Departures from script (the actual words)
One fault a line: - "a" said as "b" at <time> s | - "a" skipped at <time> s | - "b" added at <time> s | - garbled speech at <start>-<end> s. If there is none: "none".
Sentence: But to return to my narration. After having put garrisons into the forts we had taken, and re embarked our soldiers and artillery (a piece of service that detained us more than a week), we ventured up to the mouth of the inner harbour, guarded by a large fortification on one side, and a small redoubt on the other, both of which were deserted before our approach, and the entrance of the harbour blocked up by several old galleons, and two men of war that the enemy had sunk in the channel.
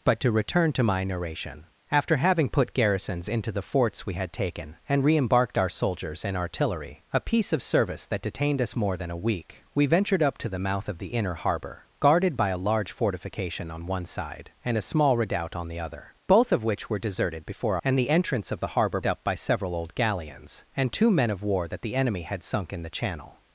- "our approach" skipped at 17.8 s
- "blocked" skipped at 19.0 s